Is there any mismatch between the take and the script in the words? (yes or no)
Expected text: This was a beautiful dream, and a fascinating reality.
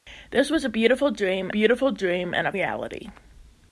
yes